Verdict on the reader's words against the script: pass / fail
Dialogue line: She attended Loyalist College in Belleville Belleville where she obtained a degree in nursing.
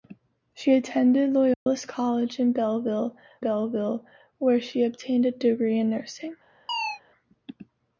pass